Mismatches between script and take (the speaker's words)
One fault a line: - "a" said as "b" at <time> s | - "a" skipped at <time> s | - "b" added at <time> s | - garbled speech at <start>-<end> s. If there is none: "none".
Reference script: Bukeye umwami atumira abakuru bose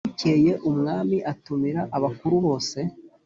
none